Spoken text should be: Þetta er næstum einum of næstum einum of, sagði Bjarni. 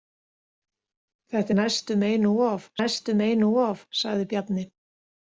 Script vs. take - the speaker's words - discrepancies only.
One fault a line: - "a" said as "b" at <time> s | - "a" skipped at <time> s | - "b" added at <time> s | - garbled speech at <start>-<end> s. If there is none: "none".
none